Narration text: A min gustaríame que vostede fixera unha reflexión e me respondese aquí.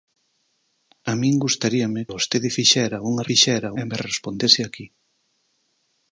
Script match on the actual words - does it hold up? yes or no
no